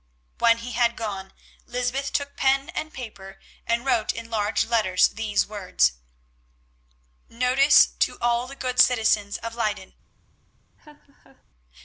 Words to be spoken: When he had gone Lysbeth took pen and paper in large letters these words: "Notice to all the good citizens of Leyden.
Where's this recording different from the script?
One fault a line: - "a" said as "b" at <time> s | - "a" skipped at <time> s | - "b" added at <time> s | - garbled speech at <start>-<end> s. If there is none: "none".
- "and wrote" added at 3.7 s